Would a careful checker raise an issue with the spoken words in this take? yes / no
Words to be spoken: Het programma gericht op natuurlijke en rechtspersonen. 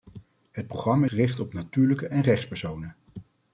no